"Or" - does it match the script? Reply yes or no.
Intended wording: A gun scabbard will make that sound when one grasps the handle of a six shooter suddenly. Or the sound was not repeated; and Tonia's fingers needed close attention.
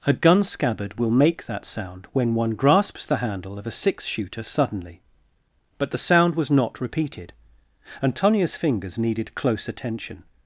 no